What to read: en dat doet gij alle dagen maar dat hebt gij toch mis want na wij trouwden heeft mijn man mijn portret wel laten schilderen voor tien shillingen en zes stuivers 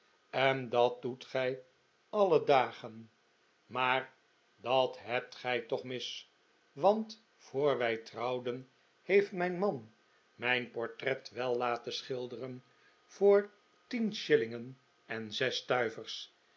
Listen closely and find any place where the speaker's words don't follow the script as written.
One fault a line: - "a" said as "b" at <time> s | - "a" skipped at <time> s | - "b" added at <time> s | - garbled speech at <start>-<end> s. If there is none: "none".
- "na" said as "voor" at 7.3 s